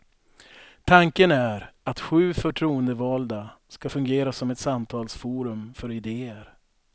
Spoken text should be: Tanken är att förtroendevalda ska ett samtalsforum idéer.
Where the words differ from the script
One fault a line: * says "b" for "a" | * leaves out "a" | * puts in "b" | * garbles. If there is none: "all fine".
* puts in "sju"
* puts in "fungera som"
* puts in "för"